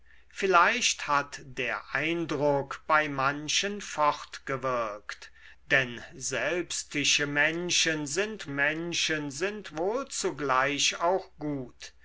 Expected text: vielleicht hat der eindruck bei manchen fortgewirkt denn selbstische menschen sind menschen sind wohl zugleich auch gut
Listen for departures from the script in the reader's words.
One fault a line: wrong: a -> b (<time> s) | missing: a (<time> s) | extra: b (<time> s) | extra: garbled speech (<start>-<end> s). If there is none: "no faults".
no faults